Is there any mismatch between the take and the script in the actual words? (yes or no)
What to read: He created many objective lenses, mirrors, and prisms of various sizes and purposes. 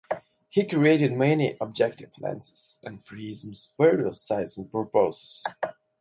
yes